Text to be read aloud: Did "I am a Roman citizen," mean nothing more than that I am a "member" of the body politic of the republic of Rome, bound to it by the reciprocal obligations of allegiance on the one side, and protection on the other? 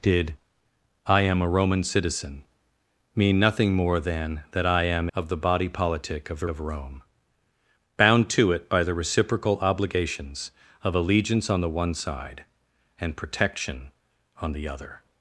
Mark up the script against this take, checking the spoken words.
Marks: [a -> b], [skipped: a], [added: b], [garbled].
Did "I am a Roman citizen," mean nothing more than that I am [skipped: a "member"] of the body politic of the [skipped: republic] of Rome, bound to it by the reciprocal obligations of allegiance on the one side, and protection on the other?